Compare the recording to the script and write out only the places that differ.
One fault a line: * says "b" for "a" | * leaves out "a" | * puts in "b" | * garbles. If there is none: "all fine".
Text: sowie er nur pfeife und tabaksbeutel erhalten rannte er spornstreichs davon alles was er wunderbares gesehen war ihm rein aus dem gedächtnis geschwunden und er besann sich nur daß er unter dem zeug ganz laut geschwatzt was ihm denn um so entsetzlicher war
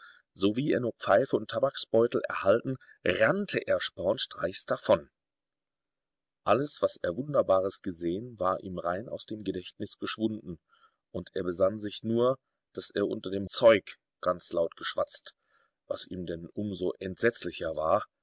all fine